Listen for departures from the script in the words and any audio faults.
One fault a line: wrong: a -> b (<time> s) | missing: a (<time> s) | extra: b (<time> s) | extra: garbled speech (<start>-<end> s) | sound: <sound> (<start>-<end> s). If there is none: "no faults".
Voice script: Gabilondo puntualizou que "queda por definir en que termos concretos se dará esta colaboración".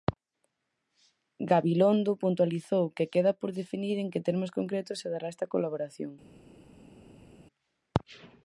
no faults